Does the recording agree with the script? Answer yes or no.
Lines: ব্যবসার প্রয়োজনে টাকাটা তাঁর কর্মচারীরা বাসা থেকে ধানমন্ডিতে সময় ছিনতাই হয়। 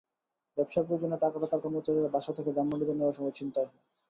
no